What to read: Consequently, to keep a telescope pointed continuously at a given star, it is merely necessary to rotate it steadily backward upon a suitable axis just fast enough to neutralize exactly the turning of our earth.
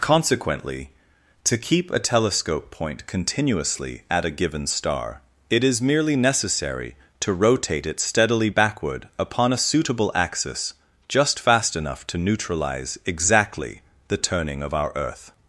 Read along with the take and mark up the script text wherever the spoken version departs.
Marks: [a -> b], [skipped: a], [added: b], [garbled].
Consequently, to keep a telescope [pointed -> point] continuously at a given star, it is merely necessary to rotate it steadily backward upon a suitable axis just fast enough to neutralize exactly the turning of our earth.